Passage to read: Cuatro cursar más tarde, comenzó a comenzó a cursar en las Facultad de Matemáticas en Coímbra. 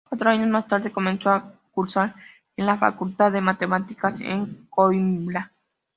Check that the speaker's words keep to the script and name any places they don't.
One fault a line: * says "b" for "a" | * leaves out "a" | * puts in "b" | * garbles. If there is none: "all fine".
* says "años" for "cursar"
* leaves out "comenzó a"
* says "la" for "las"